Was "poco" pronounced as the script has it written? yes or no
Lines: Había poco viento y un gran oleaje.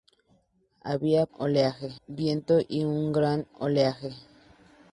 no